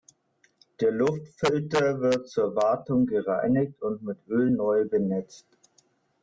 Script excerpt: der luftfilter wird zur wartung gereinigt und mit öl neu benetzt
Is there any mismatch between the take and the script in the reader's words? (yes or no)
no